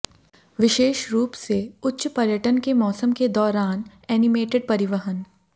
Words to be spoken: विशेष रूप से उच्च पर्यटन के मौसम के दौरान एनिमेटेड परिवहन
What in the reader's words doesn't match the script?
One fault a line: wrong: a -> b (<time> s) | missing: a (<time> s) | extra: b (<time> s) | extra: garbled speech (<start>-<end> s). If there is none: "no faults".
no faults